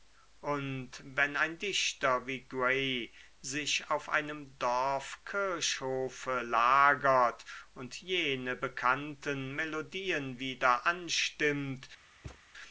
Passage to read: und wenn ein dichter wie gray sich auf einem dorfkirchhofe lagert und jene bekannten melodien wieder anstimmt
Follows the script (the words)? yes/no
yes